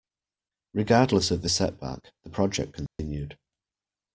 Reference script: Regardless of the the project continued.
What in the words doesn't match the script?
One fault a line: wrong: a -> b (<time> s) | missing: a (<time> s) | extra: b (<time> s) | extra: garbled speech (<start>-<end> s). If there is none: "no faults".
extra: setback (1.5 s)